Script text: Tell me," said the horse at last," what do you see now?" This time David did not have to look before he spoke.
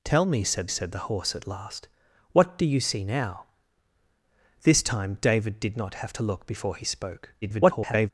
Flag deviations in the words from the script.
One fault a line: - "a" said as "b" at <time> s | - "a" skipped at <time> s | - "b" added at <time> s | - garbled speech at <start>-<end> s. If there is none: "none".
- "said" added at 0.7 s
- garbled speech at 7.4-8.1 s